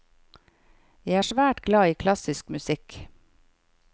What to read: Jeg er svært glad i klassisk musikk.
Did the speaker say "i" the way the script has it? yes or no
yes